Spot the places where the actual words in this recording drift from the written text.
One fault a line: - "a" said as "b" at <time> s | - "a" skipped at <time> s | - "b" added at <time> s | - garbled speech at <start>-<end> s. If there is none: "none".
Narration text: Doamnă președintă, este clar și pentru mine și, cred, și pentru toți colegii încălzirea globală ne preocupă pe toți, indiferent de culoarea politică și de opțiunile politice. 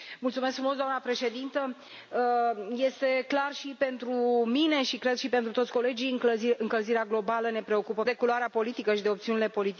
- "pe toți indiferent" skipped at 8.1 s